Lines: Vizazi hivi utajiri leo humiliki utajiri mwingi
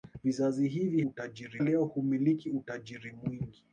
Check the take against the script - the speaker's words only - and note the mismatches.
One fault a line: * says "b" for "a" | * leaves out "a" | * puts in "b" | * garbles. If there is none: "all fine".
all fine